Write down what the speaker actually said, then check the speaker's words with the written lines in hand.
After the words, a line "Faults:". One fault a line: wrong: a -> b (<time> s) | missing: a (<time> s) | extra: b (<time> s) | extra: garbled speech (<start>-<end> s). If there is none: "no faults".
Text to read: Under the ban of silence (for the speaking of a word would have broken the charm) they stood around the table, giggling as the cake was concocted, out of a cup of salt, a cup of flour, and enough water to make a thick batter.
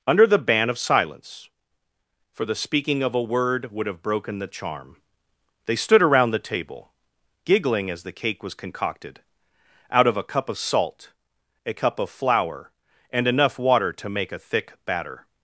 Under the ban of silence (for the speaking of a word would have broken the charm) they stood around the table, giggling as the cake was concocted, out of a cup of salt, a cup of flour, and enough water to make a thick batter.
Faults:
no faults